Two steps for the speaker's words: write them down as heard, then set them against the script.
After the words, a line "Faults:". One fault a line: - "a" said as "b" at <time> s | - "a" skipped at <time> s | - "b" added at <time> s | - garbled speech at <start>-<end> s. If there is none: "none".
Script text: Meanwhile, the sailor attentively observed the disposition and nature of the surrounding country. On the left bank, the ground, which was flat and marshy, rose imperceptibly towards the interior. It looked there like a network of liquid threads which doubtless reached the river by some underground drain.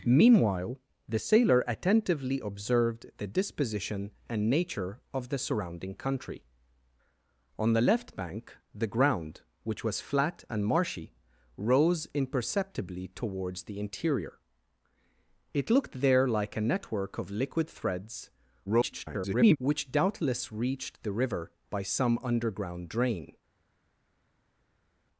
Meanwhile, the sailor attentively observed the disposition and nature of the surrounding country. On the left bank, the ground, which was flat and marshy, rose imperceptibly towards the interior. It looked there like a network of liquid threads [garbled] which doubtless reached the river by some underground drain.
Faults:
- garbled speech at 18.7-19.6 s